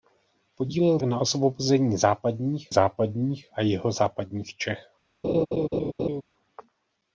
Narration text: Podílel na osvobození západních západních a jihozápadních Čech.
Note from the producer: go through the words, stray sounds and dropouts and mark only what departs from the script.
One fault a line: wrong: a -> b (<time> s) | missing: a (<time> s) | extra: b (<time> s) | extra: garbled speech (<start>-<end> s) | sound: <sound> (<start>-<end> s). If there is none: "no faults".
sound: laugh (5.2-6.2 s)